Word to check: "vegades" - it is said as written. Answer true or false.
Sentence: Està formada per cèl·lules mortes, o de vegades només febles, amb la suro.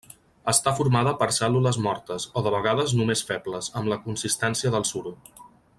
true